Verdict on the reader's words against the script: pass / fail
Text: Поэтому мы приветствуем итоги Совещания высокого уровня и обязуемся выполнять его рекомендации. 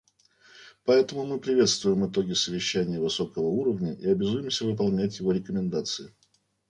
pass